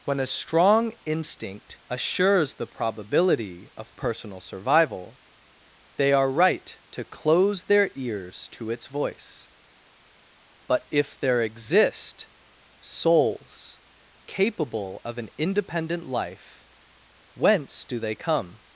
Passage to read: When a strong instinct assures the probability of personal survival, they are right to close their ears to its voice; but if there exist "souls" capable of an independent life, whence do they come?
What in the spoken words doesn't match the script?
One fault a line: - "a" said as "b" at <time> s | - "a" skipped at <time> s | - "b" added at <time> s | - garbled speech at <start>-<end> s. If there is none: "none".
none